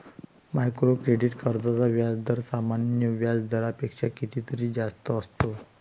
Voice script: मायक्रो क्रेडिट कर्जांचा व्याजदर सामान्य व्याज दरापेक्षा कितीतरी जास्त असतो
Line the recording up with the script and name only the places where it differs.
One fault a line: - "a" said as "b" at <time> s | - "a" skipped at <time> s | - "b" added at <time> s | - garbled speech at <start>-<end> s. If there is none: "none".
none